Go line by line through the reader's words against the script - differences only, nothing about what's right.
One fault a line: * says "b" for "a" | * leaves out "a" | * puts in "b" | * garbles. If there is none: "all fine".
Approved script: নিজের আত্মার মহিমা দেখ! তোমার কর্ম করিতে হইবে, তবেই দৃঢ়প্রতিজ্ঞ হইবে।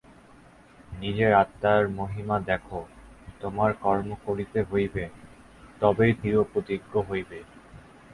all fine